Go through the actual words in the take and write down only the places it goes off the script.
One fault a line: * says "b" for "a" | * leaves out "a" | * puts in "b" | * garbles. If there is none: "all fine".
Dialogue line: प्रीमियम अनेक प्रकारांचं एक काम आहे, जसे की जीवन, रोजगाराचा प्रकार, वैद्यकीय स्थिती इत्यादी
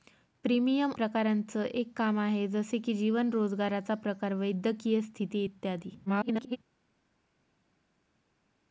* leaves out "अनेक"
* garbles